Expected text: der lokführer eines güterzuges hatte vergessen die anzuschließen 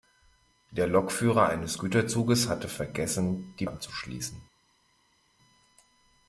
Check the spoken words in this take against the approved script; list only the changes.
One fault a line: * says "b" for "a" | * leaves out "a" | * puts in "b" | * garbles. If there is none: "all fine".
all fine